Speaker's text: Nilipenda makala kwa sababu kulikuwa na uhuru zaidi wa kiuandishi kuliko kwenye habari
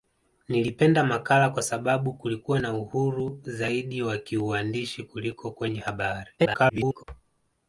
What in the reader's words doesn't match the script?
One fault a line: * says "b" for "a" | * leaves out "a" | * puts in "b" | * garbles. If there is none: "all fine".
* garbles